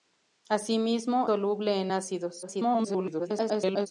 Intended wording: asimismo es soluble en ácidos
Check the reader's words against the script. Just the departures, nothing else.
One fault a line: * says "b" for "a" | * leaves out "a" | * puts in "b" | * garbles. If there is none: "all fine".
* leaves out "es"
* garbles